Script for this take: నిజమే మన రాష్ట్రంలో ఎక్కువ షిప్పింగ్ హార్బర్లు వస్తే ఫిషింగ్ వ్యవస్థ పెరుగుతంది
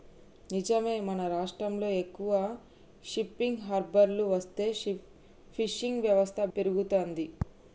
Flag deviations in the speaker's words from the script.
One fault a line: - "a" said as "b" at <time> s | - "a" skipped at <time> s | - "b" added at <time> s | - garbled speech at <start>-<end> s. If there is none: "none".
none